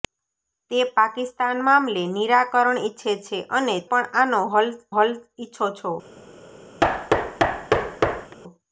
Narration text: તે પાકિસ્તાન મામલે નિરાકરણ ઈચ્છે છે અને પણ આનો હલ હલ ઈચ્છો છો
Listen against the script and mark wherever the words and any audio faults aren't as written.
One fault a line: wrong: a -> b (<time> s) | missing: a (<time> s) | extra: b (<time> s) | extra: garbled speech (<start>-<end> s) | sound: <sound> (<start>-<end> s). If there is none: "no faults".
sound: thud (6.8-8.4 s)